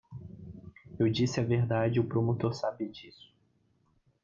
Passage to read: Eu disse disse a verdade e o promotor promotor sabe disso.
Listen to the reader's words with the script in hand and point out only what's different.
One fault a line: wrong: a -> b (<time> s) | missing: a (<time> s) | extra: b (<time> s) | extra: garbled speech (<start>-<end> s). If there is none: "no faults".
missing: disse (1.4 s)
missing: promotor (2.5 s)